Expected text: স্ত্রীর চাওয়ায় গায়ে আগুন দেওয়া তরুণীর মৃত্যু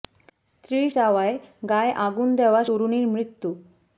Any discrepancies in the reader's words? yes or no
no